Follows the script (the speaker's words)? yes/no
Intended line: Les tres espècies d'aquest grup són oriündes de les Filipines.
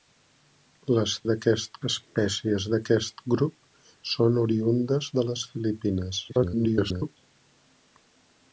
no